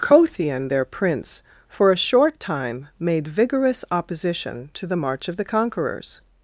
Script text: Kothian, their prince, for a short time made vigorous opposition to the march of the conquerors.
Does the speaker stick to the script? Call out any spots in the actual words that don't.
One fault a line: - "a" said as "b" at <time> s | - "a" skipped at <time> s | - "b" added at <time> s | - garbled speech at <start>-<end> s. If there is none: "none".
none